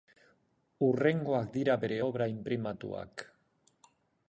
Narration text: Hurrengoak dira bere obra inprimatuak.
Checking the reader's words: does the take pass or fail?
pass